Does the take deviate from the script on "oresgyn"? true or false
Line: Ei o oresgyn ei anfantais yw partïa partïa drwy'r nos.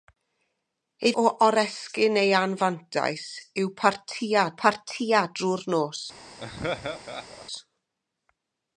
false